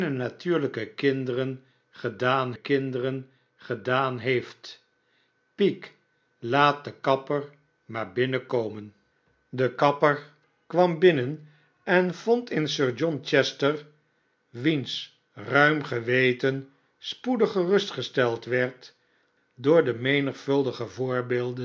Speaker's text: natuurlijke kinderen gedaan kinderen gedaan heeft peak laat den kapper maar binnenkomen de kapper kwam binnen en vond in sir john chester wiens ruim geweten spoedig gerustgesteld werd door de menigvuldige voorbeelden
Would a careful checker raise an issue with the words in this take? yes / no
no